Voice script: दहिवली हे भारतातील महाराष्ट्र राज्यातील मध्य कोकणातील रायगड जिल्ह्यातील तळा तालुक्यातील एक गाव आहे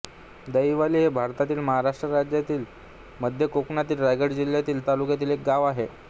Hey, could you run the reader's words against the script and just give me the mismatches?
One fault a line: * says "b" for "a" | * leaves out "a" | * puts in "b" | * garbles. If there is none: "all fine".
* leaves out "तळा"